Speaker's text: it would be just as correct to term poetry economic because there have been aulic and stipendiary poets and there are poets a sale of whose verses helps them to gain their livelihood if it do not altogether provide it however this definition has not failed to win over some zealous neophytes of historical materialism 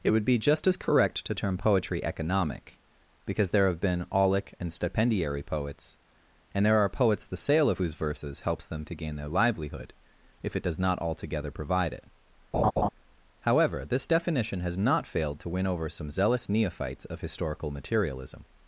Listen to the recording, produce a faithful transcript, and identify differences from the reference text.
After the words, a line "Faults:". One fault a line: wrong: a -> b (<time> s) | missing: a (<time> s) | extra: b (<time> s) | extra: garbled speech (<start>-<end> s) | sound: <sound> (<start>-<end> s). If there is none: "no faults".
it would be just as correct to term poetry economic because there have been aulic and stipendiary poets and there are poets the sale of whose verses helps them to gain their livelihood if it does not altogether provide it however this definition has not failed to win over some zealous neophytes of historical materialism
Faults:
wrong: a -> the (7.3 s)
wrong: do -> does (10.6 s)
sound: laugh (12.5-12.9 s)